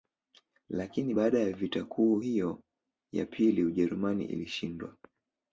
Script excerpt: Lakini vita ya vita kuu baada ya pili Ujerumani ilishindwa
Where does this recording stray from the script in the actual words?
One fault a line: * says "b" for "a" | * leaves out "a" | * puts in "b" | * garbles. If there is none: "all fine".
* says "baada" for "vita"
* says "hiyo" for "baada"